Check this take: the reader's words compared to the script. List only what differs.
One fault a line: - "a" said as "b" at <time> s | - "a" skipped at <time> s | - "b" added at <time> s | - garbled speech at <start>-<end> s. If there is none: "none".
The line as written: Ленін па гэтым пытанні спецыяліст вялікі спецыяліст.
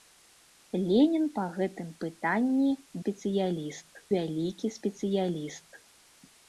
none